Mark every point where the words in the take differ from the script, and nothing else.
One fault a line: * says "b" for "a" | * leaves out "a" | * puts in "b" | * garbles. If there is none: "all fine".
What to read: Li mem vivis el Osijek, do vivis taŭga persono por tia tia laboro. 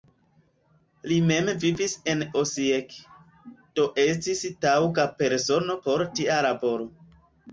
* says "en" for "el"
* says "estis" for "vivis"
* leaves out "tia"